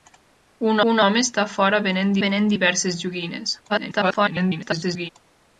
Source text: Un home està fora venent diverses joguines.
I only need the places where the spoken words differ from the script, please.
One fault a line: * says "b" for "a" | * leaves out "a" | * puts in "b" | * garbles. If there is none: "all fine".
* puts in "un"
* puts in "venent"
* garbles